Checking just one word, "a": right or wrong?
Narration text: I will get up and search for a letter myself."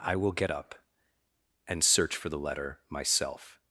wrong